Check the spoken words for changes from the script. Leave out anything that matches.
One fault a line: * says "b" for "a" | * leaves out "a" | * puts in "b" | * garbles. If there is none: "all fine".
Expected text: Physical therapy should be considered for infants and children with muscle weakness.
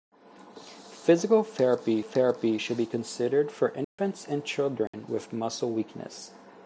* puts in "therapy"